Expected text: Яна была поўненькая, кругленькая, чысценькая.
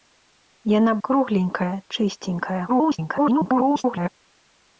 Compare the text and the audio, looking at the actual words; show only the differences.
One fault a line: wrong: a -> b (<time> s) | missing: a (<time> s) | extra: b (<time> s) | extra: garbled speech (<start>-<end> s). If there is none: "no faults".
missing: была поўненькая (0.9 s)
extra: garbled speech (2.7-4.1 s)